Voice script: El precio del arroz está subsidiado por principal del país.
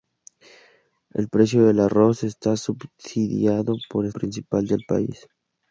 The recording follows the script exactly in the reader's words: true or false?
true